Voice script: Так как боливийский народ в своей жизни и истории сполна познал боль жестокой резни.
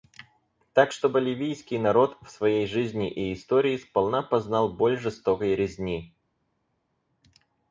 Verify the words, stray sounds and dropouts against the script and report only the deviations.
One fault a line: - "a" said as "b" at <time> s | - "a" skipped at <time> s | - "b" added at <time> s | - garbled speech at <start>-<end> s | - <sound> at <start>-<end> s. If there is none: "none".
- "как" said as "что" at 0.9 s